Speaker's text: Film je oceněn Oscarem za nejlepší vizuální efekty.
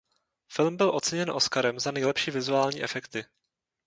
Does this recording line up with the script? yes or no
no